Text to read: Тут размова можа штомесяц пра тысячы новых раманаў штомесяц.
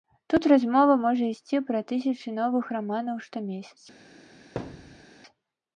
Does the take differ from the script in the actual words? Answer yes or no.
yes